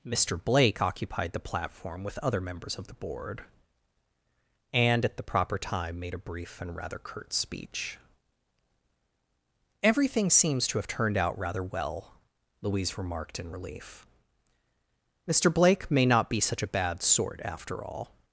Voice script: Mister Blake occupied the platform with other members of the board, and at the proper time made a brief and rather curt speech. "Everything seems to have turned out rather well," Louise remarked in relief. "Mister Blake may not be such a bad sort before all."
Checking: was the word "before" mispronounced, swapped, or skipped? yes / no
yes